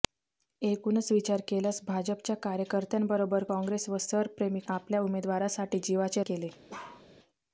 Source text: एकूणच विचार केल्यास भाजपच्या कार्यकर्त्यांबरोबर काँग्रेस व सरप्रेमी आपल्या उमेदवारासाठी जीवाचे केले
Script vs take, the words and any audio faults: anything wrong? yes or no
yes